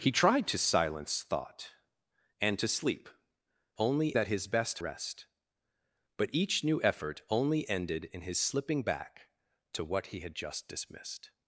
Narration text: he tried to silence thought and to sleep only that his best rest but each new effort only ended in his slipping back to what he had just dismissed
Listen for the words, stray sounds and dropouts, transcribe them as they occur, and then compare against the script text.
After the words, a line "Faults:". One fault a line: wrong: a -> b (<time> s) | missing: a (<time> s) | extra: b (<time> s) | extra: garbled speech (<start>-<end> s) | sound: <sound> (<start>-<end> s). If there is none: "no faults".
he tried to silence thought and to sleep only that his best rest but each new effort only ended in his slipping back to what he had just dismissed
Faults:
no faults